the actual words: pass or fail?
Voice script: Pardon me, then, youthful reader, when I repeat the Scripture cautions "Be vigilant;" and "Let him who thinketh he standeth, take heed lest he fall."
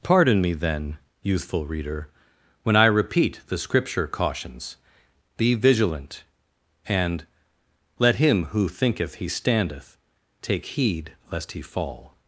pass